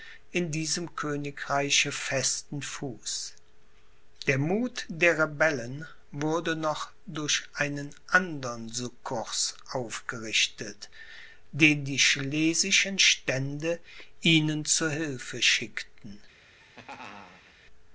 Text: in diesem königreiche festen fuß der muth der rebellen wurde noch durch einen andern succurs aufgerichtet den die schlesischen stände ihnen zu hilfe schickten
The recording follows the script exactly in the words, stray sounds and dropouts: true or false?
false